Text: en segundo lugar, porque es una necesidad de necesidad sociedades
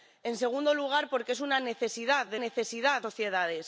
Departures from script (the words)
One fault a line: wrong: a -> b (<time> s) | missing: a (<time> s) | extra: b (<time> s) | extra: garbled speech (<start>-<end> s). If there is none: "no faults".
no faults